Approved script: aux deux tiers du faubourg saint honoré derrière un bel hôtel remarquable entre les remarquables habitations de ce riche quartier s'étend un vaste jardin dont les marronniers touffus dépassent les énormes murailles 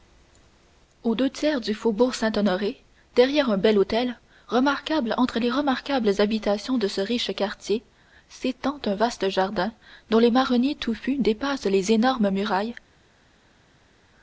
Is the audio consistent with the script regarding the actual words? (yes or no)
yes